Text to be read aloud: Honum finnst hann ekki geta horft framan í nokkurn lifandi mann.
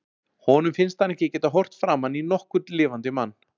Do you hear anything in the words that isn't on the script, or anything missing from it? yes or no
no